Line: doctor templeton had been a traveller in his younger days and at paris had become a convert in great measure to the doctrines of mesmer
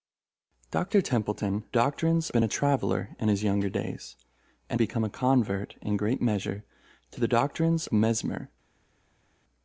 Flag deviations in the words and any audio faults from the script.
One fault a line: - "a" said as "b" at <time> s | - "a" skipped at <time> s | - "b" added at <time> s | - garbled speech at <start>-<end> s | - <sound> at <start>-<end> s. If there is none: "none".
- "had" said as "doctrines" at 1.7 s
- "at paris had" skipped at 4.8 s
- "of" skipped at 7.9 s